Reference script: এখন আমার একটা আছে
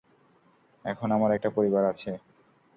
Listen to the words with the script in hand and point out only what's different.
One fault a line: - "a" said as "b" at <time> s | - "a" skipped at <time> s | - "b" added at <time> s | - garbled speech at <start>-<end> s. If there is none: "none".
- "পরিবার" added at 1.5 s